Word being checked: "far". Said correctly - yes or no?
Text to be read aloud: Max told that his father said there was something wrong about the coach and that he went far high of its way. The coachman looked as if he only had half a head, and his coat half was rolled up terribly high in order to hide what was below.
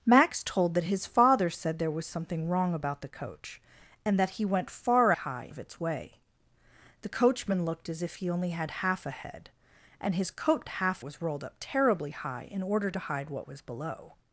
yes